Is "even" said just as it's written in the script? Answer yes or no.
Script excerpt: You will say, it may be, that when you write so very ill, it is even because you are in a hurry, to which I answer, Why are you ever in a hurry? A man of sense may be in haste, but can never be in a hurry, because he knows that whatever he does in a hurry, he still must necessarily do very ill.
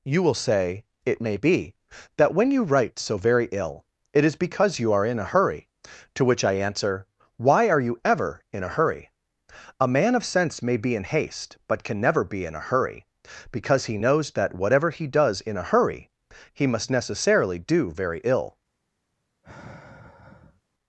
no